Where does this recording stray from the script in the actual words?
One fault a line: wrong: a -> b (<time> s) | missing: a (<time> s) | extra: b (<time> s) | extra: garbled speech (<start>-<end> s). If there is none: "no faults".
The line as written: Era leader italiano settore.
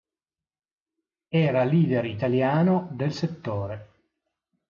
extra: del (2.9 s)